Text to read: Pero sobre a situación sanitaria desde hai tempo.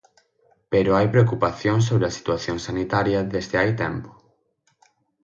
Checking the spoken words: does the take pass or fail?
fail